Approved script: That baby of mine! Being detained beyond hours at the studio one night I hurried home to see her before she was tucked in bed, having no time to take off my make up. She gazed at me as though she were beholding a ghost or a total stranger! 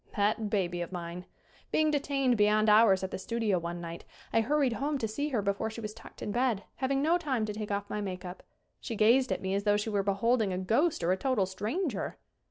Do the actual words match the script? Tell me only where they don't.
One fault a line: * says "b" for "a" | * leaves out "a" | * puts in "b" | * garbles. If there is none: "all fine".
all fine